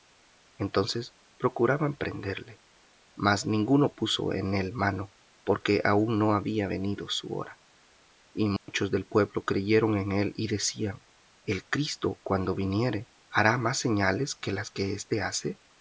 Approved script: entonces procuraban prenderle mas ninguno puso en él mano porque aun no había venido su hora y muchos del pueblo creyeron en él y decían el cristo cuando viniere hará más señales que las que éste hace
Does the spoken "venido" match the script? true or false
true